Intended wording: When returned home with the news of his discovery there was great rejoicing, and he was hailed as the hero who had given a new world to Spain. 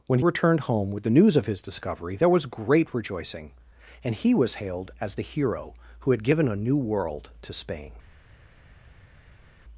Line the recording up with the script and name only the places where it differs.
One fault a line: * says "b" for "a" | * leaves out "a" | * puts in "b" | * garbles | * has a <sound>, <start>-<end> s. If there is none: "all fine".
all fine